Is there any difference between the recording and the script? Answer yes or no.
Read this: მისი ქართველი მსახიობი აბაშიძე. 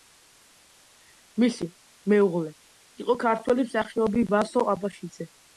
yes